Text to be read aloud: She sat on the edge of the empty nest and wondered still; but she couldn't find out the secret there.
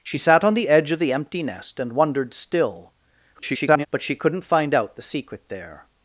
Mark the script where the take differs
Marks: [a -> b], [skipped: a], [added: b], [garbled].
She sat on the edge of the empty nest and wondered still; [garbled] but she couldn't find out the secret there.